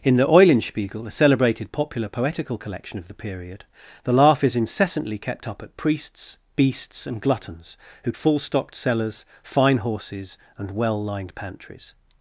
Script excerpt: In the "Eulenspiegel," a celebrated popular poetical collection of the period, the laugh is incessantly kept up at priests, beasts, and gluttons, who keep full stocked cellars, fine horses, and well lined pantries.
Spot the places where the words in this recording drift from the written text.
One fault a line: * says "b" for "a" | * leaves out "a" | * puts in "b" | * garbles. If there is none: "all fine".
* leaves out "keep"